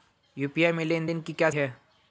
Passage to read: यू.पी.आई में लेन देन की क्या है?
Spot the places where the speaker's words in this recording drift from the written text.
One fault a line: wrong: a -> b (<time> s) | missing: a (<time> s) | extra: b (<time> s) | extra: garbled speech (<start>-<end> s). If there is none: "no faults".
no faults